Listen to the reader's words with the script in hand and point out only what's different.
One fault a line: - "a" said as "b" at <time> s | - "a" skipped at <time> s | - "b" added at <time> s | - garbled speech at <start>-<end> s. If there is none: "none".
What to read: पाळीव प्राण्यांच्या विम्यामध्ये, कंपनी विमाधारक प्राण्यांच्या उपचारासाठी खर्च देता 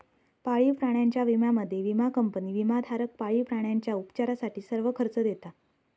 - "विमा" added at 1.8 s
- "पाळीव" added at 3.2 s
- "सर्व" added at 4.6 s